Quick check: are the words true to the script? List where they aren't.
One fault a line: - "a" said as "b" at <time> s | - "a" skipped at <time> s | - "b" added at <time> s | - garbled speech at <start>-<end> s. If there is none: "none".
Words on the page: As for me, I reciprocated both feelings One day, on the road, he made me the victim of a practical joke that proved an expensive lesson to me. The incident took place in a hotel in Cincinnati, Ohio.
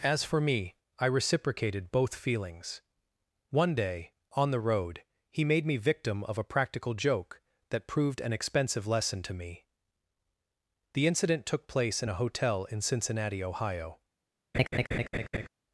- "the" skipped at 5.8 s